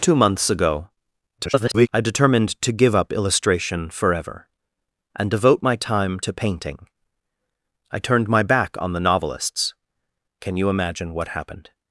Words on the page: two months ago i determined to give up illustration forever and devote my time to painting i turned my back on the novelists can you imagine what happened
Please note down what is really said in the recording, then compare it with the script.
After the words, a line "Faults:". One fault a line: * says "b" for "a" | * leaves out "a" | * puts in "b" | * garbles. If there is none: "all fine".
two months ago [garbled] i determined to give up illustration forever and devote my time to painting i turned my back on the novelists can you imagine what happened
Faults:
* garbles